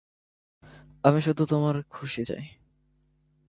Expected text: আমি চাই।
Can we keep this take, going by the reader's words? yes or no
no